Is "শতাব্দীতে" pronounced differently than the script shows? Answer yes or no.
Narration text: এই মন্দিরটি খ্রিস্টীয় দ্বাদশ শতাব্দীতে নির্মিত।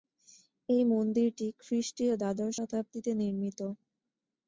no